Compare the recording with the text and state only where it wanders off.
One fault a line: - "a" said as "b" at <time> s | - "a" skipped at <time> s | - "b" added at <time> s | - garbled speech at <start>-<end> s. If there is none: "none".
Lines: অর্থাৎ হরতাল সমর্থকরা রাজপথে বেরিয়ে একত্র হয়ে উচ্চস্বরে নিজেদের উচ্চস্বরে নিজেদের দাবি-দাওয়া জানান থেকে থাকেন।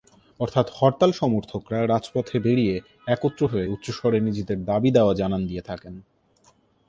- "উচ্চস্বরে নিজেদের" skipped at 4.6 s
- "থেকে" said as "দিয়ে" at 5.5 s